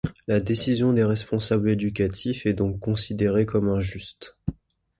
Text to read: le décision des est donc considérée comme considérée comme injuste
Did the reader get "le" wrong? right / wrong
wrong